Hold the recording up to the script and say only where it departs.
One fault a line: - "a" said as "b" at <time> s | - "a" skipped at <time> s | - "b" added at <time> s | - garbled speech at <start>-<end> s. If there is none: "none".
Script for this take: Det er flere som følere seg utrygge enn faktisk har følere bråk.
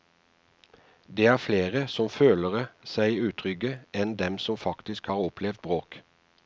- "dem som" added at 4.2 s
- "følere" said as "opplevd" at 5.3 s